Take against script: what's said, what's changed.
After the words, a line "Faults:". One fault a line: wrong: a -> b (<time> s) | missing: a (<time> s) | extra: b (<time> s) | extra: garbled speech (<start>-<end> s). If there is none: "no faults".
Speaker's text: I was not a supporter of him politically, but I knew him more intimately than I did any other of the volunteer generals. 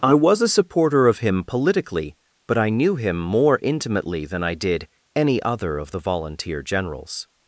I was a supporter of him politically, but I knew him more intimately than I did any other of the volunteer generals.
Faults:
missing: not (0.4 s)